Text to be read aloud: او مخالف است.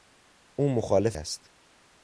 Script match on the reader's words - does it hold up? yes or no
yes